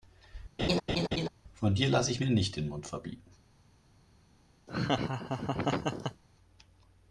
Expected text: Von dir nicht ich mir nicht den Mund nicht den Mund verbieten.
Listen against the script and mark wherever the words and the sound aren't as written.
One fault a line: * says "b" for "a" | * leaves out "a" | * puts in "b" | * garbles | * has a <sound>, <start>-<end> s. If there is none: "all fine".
* has a laugh, 0.6-1.3 s
* says "lasse" for "nicht"
* leaves out "nicht den Mund"
* has a laugh, 4.7-6.2 s